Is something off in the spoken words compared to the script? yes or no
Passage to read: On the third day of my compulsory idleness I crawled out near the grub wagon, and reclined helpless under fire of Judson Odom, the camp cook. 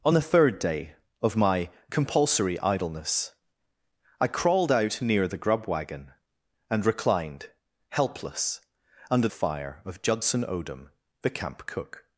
no